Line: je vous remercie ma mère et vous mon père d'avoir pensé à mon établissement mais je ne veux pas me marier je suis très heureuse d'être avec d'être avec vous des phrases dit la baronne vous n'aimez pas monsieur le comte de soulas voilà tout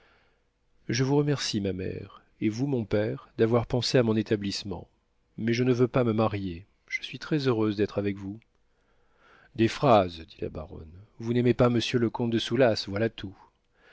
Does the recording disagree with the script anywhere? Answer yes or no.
yes